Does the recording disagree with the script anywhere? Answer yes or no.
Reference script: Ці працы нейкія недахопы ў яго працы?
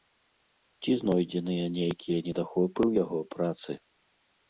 yes